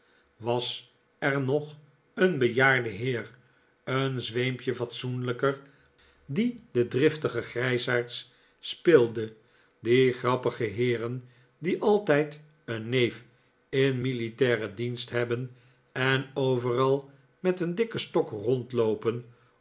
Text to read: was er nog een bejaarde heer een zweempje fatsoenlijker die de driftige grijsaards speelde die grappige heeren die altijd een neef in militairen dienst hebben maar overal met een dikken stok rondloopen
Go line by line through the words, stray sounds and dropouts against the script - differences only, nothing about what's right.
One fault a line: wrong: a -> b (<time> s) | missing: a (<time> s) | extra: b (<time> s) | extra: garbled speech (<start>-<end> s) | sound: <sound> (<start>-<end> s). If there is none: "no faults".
wrong: maar -> en (15.9 s)